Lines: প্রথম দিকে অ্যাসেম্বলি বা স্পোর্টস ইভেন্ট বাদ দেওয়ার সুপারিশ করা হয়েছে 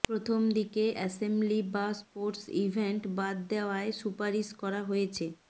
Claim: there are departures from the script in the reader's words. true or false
false